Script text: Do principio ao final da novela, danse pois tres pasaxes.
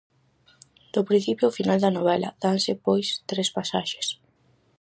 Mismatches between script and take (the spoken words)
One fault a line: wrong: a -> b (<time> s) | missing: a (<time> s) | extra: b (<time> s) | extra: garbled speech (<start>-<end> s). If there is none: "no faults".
no faults